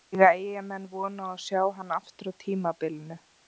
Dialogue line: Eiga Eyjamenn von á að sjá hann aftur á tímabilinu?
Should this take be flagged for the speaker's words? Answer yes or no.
no